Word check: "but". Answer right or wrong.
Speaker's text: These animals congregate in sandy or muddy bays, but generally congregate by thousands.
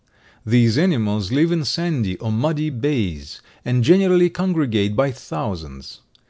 wrong